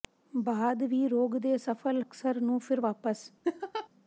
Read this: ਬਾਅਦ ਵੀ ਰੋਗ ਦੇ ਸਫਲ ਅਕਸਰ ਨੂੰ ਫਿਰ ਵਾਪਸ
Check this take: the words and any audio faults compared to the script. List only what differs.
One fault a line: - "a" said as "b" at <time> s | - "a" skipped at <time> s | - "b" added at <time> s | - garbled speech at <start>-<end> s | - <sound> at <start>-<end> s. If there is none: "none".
- laugh at 3.4-3.9 s